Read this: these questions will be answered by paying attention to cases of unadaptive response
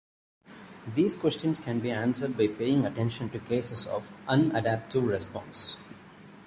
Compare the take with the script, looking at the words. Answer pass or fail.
fail